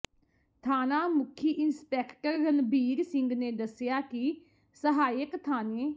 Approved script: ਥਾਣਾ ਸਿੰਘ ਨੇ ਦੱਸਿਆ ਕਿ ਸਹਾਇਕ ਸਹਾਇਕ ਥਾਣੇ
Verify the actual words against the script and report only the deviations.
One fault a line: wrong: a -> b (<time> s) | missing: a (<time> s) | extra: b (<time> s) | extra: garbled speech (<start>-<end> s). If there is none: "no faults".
extra: ਮੁਖੀ ਇੰਸਪੈਕਟਰ ਰਣਬੀਰ (1.1 s)
missing: ਸਹਾਇਕ (5.4 s)